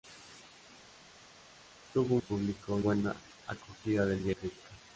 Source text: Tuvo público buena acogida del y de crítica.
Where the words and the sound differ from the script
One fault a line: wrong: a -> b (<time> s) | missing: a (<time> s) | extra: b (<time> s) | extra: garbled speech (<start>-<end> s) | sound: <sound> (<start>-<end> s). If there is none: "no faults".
no faults